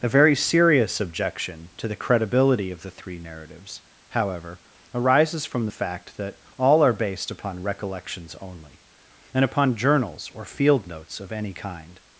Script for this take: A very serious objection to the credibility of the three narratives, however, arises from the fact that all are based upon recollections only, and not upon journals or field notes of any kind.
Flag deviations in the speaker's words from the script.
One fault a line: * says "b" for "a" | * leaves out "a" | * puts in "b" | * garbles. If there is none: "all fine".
* leaves out "not"